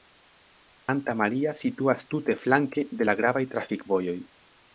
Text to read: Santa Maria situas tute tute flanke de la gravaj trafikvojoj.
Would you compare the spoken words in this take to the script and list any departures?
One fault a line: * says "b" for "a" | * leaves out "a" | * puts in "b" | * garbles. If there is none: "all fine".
* leaves out "tute"